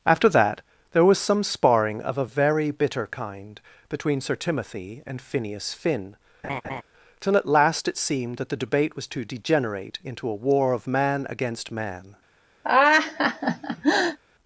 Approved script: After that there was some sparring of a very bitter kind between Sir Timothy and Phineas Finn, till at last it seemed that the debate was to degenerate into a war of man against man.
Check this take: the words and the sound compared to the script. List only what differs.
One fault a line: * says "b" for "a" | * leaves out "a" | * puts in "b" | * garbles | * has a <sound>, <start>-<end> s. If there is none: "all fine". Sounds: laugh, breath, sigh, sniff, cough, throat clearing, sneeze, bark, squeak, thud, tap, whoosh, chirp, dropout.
* has a laugh, 6.4-6.8 s
* has a laugh, 12.6-14.2 s